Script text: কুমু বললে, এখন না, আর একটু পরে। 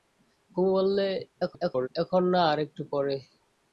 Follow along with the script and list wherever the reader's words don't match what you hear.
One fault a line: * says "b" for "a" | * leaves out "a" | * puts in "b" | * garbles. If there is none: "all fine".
* garbles